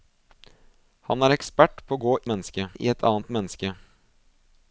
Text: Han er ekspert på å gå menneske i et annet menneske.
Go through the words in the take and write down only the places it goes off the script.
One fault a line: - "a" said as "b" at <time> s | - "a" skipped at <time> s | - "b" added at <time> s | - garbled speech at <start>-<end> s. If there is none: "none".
none